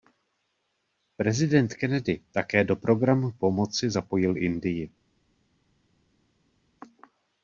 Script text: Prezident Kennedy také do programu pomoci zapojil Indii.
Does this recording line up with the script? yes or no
yes